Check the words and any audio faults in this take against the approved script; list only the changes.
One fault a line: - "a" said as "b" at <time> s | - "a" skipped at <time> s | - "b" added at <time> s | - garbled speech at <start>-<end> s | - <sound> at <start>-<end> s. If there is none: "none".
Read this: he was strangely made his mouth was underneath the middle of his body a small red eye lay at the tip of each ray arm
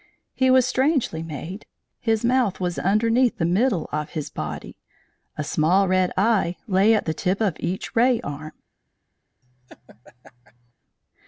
- laugh at 9.4-10.7 s